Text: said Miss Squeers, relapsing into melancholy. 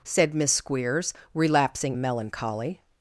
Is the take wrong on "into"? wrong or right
wrong